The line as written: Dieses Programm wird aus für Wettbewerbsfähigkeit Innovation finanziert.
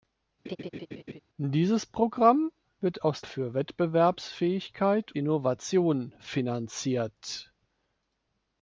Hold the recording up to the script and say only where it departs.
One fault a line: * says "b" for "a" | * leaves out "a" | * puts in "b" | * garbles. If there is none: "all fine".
all fine